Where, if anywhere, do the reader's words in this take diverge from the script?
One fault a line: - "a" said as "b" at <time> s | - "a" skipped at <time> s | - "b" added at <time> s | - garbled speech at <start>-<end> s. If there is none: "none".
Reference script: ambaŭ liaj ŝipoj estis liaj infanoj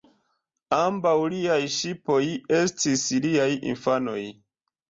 none